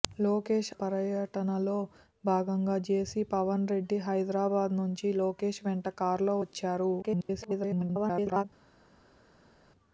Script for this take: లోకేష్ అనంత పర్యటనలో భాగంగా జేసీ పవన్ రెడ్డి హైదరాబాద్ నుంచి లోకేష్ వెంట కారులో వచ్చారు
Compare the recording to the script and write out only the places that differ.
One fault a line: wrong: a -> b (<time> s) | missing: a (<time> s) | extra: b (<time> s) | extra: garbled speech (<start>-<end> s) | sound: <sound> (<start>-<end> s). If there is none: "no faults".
missing: అనంత (0.7 s)
extra: garbled speech (7.0-8.4 s)